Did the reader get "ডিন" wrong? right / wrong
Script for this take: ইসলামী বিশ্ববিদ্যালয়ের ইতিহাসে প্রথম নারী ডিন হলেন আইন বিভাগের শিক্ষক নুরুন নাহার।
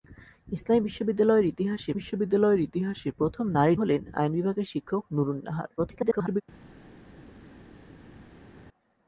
wrong